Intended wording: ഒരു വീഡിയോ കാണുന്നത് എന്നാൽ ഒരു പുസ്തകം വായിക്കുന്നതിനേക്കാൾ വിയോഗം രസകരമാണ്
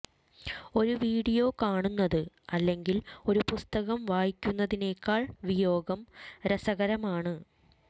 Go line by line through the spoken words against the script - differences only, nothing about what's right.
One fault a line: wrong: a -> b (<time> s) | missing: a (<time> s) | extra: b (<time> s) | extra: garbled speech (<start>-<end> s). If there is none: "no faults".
wrong: എന്നാൽ -> അല്ലെങ്കിൽ (2.5 s)